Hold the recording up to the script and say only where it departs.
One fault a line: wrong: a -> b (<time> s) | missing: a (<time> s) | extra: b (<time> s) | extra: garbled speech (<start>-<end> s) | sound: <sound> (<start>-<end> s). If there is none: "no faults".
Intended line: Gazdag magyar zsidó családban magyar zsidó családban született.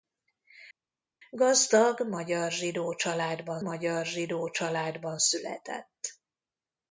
no faults